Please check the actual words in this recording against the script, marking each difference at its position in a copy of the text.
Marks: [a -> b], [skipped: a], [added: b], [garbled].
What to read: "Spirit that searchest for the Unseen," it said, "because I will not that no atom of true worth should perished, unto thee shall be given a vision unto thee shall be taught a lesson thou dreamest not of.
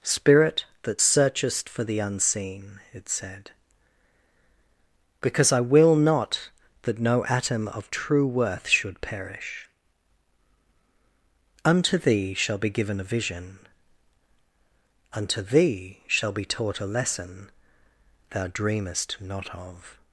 "Spirit that searchest for the Unseen," it said, "because I will not that no atom of true worth should [perished, -> perish] unto thee shall be given a vision unto thee shall be taught a lesson thou dreamest not of.